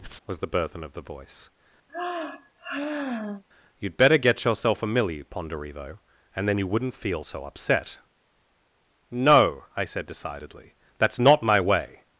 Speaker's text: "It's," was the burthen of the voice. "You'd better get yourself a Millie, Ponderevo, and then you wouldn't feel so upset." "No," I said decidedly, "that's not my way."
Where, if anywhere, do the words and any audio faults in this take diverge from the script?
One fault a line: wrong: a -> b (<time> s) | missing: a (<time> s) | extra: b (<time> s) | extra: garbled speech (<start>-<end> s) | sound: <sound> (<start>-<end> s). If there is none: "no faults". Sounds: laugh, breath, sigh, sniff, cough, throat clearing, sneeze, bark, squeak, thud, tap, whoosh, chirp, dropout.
sound: sigh (1.9-3.4 s)